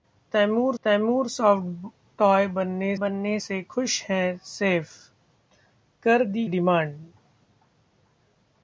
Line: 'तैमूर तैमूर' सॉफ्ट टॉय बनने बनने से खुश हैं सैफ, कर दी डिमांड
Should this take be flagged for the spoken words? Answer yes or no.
no